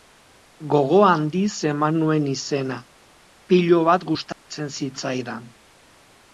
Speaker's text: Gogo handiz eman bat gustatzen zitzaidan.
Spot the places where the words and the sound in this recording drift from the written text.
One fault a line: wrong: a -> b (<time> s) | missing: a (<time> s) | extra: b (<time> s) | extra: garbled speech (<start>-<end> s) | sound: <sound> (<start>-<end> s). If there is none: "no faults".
extra: nuen izena pilo (2.0 s)
sound: dropout (4.3-4.5 s)